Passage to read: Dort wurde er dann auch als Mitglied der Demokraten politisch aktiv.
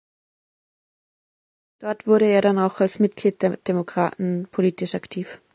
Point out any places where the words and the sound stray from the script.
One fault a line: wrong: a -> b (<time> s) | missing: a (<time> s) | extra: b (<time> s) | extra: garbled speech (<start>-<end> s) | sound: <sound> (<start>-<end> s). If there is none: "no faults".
no faults